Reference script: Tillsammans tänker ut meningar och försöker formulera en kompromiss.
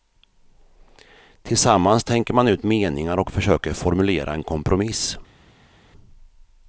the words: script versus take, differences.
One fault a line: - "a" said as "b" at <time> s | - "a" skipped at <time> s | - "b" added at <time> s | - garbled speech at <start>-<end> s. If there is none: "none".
- "man" added at 2.3 s